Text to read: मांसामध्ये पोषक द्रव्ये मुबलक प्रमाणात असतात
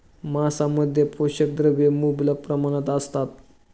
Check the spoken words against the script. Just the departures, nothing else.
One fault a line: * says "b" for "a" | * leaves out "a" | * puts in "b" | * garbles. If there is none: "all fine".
all fine